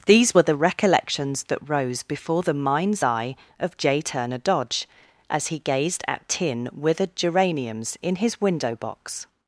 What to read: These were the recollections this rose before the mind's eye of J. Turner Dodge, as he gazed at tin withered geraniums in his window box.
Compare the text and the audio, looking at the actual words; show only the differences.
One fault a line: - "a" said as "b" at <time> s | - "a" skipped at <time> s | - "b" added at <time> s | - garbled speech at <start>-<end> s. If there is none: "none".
- "this" said as "that" at 1.4 s